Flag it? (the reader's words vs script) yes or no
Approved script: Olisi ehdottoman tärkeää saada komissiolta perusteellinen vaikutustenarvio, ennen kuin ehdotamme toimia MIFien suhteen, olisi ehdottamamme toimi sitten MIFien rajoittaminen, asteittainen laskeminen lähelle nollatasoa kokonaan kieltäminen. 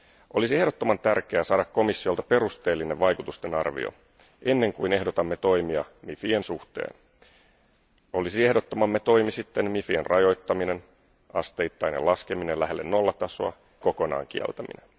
no